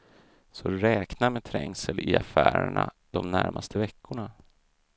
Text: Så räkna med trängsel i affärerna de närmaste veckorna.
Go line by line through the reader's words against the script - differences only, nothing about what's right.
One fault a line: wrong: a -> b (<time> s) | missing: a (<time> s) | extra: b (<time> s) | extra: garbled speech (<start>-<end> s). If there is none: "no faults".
no faults